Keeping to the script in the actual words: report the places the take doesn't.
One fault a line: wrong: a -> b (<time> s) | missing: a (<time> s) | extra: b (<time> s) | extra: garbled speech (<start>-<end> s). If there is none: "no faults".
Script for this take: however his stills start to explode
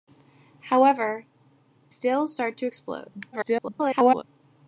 missing: his (1.2 s)
extra: garbled speech (3.3-4.2 s)